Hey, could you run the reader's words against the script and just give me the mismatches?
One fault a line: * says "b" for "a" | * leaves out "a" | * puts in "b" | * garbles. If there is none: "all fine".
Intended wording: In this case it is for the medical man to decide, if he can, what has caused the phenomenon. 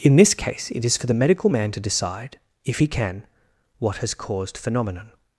* leaves out "the"